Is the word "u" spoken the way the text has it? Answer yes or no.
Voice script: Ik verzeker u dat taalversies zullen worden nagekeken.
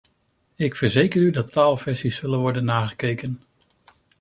yes